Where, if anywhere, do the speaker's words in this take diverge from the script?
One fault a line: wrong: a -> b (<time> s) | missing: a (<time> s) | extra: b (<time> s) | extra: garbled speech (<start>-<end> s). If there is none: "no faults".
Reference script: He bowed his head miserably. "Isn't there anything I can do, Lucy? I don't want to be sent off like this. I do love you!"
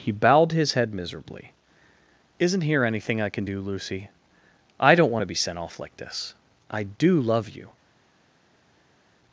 wrong: there -> here (2.6 s)